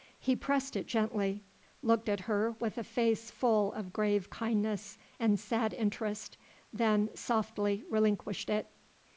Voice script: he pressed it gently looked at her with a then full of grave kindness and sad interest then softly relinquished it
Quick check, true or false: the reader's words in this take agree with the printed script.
false